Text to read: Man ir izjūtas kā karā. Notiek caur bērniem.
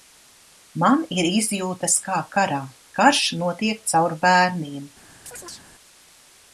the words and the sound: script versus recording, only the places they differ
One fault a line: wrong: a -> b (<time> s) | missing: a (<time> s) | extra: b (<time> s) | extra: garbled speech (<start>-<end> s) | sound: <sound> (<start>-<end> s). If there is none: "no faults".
extra: Karš (3.0 s)
sound: chirp (5.3-5.7 s)